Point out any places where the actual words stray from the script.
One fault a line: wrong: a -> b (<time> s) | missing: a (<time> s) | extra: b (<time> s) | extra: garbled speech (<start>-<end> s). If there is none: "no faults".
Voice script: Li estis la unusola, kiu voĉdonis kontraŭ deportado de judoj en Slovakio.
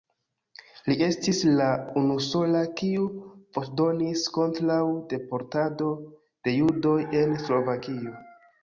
no faults